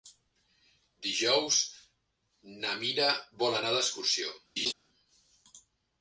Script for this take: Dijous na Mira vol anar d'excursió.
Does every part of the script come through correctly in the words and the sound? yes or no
no